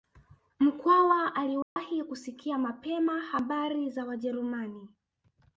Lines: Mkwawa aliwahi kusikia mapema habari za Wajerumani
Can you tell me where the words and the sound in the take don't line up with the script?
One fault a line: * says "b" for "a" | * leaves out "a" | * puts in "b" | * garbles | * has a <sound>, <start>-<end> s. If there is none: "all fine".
* has a dropout, 1.6-1.8 s